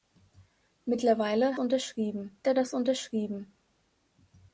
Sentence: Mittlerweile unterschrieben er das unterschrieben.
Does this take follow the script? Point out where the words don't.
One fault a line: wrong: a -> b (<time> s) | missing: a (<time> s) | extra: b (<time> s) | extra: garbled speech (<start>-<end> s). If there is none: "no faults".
no faults